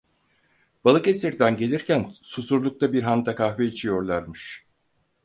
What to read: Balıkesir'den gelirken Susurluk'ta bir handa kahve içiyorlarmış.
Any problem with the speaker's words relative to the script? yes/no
no